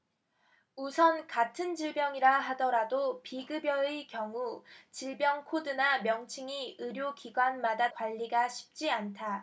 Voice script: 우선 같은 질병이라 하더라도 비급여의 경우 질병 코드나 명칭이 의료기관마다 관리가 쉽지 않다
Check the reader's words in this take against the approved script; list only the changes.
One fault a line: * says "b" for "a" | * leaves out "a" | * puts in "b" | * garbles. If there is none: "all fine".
all fine